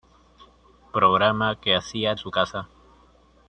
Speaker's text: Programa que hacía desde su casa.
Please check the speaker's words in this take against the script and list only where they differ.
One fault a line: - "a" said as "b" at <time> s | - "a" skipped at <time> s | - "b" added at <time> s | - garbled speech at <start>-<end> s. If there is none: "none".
- "desde" skipped at 2.1 s